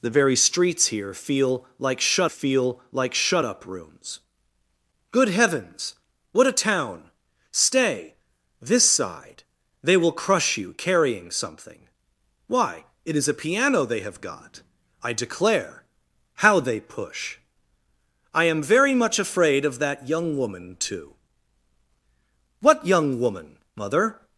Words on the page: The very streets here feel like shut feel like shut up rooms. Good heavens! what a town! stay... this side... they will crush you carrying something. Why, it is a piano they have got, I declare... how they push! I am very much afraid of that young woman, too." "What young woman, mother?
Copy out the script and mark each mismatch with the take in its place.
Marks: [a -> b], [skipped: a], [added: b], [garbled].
The very streets here feel like shut feel like shut up rooms. Good heavens! what a town! stay... this side... they will crush you carrying something. Why, it is a piano they have got, I declare... how they push! I am very much afraid of that young woman, too." "What young woman, mother?